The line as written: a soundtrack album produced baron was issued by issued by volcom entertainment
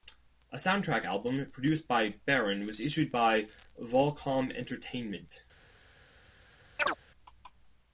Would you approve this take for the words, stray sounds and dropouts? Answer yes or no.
no